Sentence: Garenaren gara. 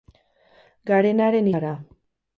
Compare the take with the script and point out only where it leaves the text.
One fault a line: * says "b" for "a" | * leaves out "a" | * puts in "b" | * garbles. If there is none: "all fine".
all fine